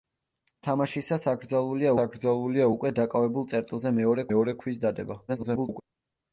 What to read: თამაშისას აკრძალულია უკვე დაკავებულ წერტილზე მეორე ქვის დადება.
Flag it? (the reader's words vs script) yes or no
yes